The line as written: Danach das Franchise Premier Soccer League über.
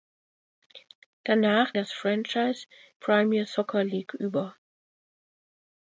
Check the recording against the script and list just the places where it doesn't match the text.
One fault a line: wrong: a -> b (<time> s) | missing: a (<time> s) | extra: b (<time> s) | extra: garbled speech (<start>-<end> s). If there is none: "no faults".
no faults